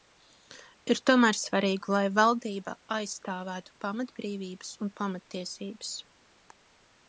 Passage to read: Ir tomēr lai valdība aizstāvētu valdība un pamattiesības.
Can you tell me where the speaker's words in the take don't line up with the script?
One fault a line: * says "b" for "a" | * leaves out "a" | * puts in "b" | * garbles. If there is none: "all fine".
* puts in "svarīgi"
* says "pamatbrīvības" for "valdība"